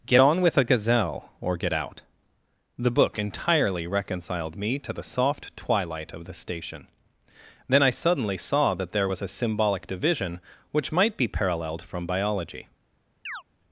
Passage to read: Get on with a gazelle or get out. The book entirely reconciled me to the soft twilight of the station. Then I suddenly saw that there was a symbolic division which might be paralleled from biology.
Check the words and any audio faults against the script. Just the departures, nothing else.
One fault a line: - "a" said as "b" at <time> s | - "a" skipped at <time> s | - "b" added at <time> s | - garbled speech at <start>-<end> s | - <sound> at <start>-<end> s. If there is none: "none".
- chirp at 13.3-13.4 s